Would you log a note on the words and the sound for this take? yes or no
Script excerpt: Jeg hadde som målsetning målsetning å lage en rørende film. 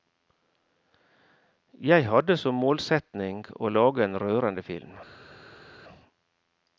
yes